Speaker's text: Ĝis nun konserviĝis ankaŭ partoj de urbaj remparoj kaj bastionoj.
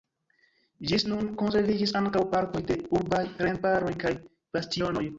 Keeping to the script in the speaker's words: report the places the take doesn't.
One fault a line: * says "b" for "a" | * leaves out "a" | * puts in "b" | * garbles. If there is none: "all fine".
all fine